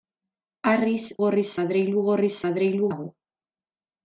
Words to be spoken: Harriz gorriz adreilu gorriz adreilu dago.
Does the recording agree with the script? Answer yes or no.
yes